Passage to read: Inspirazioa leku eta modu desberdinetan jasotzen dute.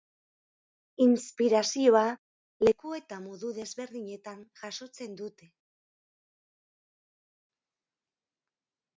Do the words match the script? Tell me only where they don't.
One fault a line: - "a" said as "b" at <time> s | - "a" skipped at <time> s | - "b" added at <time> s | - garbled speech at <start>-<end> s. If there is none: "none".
none